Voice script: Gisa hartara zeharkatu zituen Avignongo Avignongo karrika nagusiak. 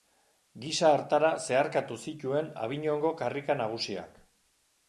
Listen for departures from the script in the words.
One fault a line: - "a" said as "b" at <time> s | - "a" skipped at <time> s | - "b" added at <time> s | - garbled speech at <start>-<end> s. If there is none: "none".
- "Avignongo" skipped at 3.1 s